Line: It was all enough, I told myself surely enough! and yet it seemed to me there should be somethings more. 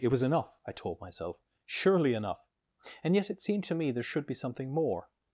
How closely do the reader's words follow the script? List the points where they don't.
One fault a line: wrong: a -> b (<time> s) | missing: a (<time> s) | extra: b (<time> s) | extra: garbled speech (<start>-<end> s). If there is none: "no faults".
missing: all (0.2 s)
wrong: somethings -> something (4.3 s)